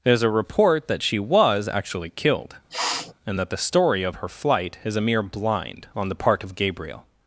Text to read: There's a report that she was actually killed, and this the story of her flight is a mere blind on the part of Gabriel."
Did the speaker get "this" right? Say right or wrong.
wrong